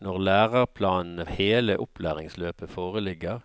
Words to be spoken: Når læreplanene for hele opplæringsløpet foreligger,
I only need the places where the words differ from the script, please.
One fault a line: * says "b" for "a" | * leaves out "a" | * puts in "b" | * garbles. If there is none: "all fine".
* leaves out "for"